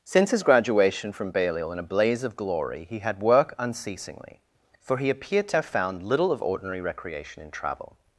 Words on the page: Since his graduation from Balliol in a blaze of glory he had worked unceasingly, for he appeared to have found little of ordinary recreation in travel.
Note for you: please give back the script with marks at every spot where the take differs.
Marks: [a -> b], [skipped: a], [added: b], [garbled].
Since his graduation from Balliol in a blaze of glory he had [worked -> work] unceasingly, for he appeared to have found little of ordinary recreation in travel.